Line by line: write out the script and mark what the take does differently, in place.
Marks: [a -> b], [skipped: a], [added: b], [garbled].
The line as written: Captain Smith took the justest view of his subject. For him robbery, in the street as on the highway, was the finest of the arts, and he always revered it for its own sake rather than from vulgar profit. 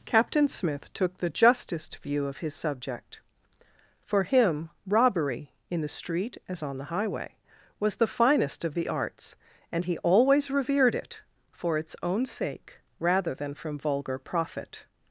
Captain Smith took the justest view of his subject. For him robbery, in the street as on the highway, was the finest of the arts, and he always revered it for its own sake rather than from vulgar profit.